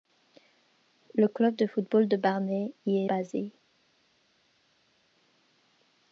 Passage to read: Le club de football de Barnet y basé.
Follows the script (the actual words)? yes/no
yes